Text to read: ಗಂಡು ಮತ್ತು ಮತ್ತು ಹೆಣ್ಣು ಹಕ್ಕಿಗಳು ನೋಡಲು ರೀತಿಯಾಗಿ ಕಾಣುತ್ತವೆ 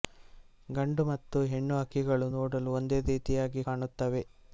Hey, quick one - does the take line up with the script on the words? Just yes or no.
no